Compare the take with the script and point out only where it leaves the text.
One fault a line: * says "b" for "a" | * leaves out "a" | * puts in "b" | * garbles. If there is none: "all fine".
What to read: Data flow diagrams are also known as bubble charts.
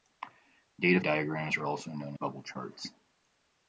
* leaves out "flow"
* leaves out "as"